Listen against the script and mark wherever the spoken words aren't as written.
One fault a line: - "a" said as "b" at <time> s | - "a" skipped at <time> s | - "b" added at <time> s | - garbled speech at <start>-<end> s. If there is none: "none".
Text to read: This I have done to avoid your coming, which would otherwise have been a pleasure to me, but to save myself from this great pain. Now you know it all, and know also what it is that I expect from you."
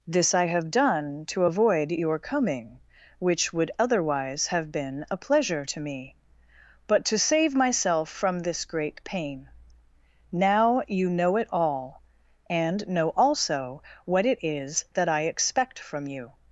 none